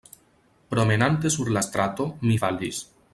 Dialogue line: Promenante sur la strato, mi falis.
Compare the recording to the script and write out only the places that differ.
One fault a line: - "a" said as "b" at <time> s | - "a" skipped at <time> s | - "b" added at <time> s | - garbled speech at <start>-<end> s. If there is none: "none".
none